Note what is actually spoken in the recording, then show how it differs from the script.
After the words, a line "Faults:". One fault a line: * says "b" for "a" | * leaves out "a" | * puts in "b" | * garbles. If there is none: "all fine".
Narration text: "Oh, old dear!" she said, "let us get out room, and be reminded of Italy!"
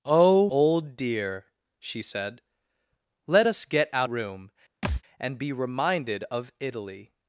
"Oh, old dear!" she said, "let us get out room, and be reminded of Italy!"
Faults:
all fine